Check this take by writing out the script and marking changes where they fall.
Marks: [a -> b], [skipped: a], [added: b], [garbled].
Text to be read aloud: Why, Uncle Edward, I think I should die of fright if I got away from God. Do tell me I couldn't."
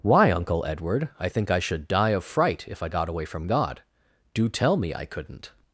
Why, Uncle Edward, I think I should die of fright if I got away from God. Do tell me I couldn't."